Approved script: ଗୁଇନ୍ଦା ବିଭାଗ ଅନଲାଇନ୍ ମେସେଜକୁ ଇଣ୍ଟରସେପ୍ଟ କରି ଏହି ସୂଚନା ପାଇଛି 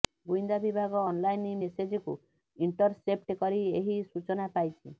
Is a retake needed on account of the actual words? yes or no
no